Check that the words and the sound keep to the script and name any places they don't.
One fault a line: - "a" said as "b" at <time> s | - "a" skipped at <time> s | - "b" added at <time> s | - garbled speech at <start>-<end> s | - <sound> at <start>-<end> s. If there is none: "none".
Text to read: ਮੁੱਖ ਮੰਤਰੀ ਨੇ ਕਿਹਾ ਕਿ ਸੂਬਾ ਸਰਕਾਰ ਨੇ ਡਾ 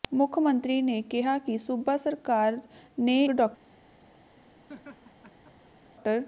- laugh at 4.7-5.9 s